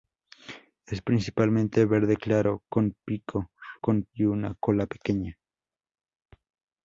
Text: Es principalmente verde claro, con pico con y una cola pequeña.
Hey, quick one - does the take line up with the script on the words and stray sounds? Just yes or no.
yes